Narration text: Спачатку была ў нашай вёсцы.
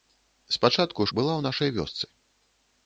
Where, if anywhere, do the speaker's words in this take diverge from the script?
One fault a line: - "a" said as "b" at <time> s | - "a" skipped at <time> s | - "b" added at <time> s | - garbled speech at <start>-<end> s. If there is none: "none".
none